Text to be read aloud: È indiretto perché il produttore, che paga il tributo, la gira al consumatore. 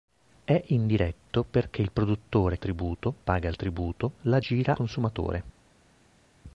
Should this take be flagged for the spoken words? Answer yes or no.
yes